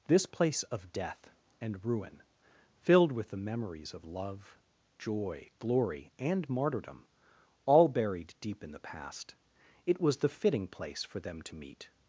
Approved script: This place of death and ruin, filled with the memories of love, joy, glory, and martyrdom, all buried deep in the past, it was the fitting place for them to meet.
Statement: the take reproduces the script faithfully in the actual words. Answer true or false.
true